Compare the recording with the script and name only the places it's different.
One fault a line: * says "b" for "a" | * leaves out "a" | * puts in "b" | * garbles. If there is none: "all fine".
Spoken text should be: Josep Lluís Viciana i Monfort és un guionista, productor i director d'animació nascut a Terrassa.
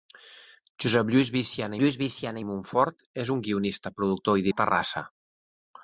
* puts in "Lluís Viciana"
* leaves out "director d'animació nascut"